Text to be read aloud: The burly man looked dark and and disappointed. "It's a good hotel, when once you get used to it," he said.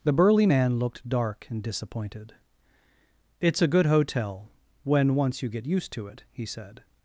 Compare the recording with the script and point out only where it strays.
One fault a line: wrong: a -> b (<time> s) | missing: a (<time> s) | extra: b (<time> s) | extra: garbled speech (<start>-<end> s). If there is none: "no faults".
missing: and (1.6 s)